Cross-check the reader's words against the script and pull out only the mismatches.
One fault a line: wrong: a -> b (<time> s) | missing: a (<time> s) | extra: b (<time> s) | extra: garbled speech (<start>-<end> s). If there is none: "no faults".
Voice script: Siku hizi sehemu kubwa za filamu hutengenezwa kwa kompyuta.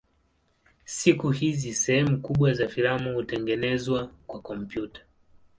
no faults